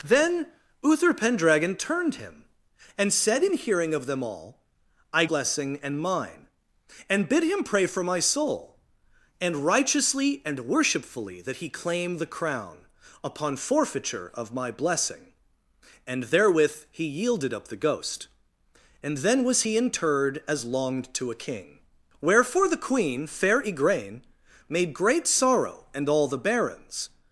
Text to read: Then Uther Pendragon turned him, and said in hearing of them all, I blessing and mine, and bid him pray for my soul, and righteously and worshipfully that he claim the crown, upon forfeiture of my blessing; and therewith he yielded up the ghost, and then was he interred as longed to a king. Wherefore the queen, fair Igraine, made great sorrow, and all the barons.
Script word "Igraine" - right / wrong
right